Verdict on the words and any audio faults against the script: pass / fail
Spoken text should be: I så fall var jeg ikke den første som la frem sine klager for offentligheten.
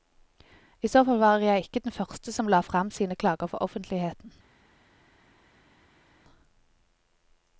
pass